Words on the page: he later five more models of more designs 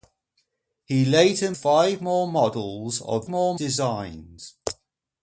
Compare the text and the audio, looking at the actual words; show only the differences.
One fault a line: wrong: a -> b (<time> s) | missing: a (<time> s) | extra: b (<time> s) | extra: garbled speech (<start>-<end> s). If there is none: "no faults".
no faults